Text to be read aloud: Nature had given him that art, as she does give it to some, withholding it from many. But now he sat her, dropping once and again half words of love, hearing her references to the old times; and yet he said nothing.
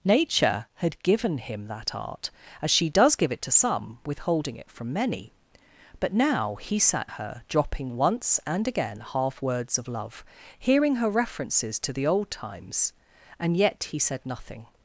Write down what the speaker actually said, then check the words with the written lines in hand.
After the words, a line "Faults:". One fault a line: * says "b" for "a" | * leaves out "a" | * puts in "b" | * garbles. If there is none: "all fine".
Nature had given him that art, as she does give it to some, withholding it from many. But now he sat her, dropping once and again half words of love, hearing her references to the old times; and yet he said nothing.
Faults:
all fine